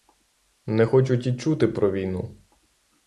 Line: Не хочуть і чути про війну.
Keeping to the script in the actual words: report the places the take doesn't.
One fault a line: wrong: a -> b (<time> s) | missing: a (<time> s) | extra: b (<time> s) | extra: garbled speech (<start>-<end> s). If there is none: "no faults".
no faults